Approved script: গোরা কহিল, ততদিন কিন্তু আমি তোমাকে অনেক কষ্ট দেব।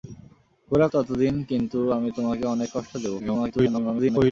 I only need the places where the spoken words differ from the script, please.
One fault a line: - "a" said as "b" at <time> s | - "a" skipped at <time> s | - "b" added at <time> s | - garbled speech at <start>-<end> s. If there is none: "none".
- "কহিল" skipped at 0.9 s
- garbled speech at 3.2-4.3 s